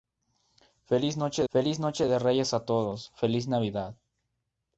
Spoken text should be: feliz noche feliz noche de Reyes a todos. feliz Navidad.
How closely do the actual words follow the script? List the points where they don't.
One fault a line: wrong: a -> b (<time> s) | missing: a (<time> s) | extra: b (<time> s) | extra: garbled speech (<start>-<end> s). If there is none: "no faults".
no faults